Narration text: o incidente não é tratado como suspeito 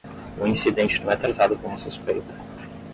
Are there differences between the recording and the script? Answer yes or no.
no